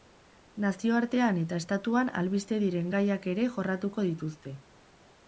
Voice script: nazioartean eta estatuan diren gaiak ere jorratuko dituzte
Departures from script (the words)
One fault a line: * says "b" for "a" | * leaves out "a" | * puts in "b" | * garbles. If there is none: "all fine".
* puts in "albiste"